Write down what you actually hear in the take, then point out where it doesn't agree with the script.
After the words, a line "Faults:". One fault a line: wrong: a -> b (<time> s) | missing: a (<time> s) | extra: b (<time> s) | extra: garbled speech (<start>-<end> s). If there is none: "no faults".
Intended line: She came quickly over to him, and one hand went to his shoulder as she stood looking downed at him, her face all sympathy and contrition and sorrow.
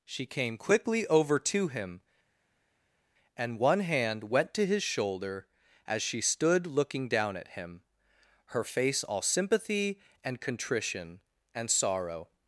She came quickly over to him, and one hand went to his shoulder as she stood looking down at him, her face all sympathy and contrition and sorrow.
Faults:
wrong: downed -> down (7.1 s)